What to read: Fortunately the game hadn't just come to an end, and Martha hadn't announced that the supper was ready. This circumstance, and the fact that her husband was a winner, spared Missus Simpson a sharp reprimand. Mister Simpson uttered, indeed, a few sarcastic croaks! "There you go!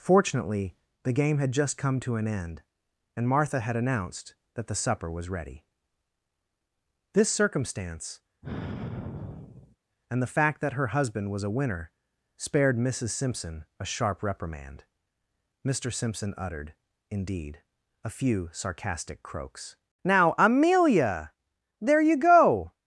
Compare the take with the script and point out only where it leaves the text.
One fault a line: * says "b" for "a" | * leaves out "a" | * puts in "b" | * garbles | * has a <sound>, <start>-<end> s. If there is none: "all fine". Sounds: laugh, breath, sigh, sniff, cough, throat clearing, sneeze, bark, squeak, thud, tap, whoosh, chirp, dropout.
* says "had" for "hadn't"
* says "had" for "hadn't"
* has a sigh, 8.4-9.8 s
* puts in "Now Amelia"